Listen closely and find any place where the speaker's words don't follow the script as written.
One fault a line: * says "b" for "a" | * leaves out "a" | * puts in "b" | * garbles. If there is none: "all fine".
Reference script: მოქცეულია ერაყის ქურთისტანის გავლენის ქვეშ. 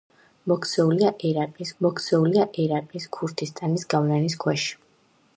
* puts in "მოქცეულია ერაყის"